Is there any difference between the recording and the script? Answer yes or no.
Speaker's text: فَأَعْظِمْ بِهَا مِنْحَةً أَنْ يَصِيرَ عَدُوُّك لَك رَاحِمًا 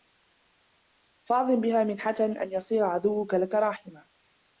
no